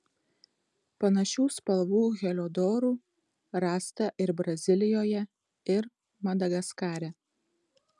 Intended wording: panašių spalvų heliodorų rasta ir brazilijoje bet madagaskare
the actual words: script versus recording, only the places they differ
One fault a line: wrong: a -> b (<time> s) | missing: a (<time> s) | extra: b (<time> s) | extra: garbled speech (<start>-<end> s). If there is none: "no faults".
wrong: bet -> ir (5.8 s)